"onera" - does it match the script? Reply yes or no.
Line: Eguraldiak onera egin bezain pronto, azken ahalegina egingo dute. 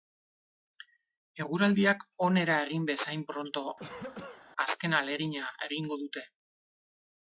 yes